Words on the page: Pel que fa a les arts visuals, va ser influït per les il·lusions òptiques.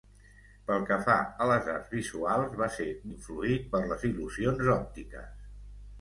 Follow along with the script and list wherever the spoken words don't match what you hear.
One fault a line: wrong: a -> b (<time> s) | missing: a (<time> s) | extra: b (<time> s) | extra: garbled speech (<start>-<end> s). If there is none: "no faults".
no faults